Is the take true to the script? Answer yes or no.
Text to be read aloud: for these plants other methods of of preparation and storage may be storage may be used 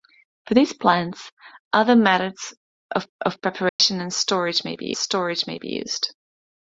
yes